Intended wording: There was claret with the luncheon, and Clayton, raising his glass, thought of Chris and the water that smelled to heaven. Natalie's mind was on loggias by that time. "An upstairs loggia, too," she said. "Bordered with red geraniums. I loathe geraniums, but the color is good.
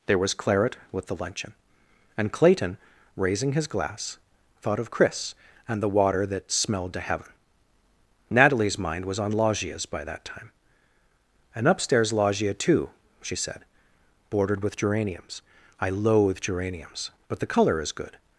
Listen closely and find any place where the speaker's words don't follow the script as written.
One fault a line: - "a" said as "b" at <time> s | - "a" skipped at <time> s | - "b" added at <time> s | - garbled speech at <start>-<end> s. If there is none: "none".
- "red" skipped at 14.8 s